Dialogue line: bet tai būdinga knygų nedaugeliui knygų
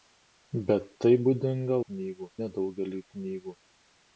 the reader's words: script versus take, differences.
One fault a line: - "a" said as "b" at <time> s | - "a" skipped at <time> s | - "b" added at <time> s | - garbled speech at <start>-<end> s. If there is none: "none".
none